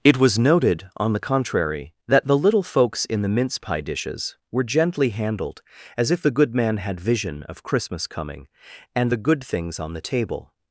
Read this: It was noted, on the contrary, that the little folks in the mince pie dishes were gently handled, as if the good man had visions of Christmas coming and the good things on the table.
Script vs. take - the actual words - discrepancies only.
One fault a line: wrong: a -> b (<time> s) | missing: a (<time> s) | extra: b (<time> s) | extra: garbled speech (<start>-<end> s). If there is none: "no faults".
wrong: visions -> vision (7.0 s)